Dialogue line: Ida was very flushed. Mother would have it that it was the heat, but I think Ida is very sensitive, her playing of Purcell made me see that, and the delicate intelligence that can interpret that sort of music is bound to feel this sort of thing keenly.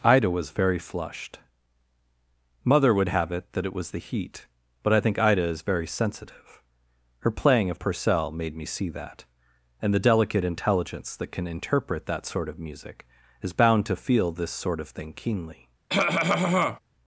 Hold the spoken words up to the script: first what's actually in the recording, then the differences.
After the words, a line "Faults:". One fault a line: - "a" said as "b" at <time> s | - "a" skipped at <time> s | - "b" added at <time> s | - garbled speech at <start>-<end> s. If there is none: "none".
Ida was very flushed. Mother would have it that it was the heat, but I think Ida is very sensitive, her playing of Purcell made me see that, and the delicate intelligence that can interpret that sort of music is bound to feel this sort of thing keenly.
Faults:
none